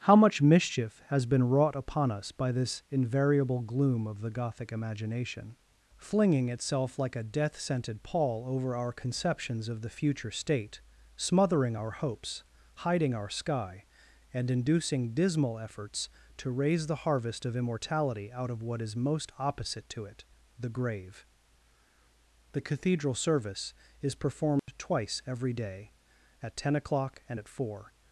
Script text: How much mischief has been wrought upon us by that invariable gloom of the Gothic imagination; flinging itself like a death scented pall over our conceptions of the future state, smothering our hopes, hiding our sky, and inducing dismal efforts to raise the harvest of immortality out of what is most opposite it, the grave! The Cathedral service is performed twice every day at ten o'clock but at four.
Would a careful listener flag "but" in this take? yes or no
yes